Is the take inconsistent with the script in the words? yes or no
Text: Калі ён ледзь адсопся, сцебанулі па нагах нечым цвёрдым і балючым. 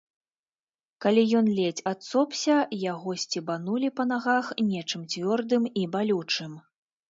yes